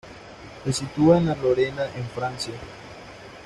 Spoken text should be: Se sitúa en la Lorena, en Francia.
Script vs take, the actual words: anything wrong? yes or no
no